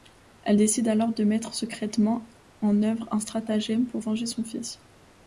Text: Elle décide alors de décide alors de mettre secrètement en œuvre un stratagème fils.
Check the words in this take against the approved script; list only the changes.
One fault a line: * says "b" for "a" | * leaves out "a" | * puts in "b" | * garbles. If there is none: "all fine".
* leaves out "décide alors de"
* puts in "pour venger son"